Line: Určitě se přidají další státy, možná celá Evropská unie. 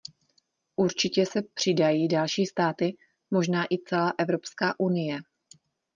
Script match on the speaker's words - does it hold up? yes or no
no